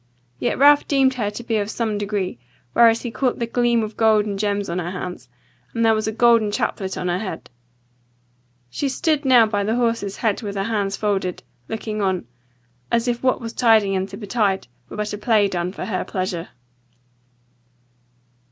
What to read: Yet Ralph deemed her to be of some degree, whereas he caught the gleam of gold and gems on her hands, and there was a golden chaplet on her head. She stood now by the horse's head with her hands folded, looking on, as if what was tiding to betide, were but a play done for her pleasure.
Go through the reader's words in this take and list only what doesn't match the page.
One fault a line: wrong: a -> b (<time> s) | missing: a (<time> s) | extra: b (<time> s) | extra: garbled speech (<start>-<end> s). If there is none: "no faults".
extra: and (13.9 s)